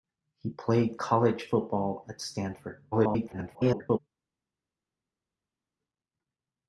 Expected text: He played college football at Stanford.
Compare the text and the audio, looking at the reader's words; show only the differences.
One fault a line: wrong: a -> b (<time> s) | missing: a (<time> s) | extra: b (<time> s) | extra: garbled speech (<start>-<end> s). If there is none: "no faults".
extra: garbled speech (2.9-4.0 s)